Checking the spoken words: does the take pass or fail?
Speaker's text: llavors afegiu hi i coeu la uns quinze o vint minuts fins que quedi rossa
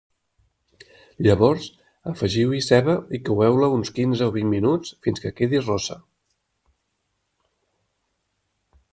fail